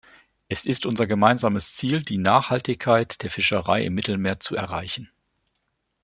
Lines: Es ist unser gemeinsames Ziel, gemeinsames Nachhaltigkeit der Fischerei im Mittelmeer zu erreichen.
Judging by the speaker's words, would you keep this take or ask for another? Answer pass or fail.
fail